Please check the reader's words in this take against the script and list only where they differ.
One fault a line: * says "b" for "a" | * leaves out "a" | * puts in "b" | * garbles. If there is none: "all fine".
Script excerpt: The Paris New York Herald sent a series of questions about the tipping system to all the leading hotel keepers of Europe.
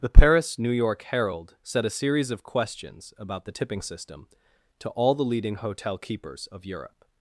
* says "set" for "sent"